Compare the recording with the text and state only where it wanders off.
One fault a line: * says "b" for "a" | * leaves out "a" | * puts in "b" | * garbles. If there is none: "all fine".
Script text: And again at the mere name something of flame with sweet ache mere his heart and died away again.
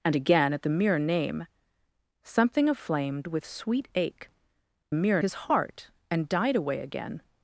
all fine